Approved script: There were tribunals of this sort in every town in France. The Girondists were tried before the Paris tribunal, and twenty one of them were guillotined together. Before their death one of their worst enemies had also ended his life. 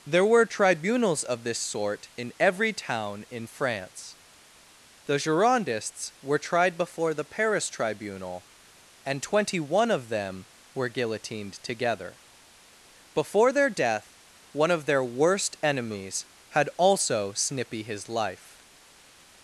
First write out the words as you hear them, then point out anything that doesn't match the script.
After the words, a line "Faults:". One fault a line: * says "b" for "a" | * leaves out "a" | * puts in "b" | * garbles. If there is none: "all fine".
There were tribunals of this sort in every town in France. The Girondists were tried before the Paris tribunal, and twenty one of them were guillotined together. Before their death one of their worst enemies had also snippy his life.
Faults:
* says "snippy" for "ended"